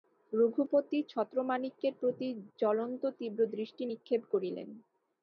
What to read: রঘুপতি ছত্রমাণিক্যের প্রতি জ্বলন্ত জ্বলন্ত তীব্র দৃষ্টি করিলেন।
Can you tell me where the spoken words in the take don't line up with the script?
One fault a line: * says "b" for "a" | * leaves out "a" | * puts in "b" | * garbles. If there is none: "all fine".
* leaves out "জ্বলন্ত"
* puts in "নিক্ষেপ"